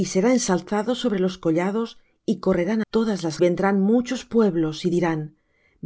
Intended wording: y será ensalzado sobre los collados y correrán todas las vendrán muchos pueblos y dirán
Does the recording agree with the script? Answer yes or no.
yes